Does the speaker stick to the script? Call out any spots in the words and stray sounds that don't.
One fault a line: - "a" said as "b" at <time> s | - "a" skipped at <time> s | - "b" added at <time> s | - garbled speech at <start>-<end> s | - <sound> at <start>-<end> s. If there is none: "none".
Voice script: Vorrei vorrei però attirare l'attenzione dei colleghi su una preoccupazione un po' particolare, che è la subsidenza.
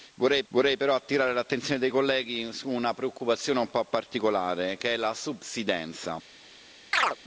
- chirp at 6.9-7.2 s